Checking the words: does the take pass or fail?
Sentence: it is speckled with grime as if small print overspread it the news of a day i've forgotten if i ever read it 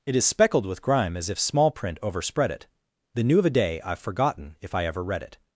fail